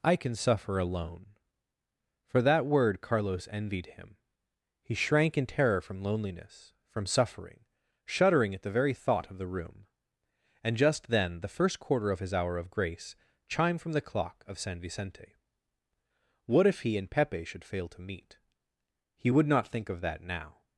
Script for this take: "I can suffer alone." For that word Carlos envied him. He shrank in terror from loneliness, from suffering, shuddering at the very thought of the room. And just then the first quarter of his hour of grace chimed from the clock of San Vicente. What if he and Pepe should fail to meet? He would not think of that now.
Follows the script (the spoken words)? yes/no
yes